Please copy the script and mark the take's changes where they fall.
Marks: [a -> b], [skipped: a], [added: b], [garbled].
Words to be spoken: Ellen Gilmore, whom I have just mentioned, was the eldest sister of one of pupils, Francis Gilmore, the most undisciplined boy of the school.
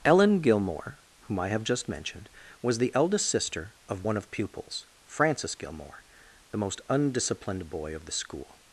Ellen Gilmore, whom I have just mentioned, was the eldest sister of one of pupils, Francis Gilmore, the most undisciplined boy of the school.